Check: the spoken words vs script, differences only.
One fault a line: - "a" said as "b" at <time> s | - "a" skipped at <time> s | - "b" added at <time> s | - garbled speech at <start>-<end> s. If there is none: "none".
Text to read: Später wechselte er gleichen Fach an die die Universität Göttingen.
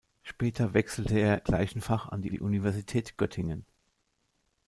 none